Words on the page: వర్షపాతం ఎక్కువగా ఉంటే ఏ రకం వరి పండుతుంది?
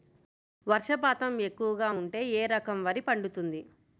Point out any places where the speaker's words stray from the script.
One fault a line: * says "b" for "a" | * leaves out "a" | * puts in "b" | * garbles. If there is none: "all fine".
all fine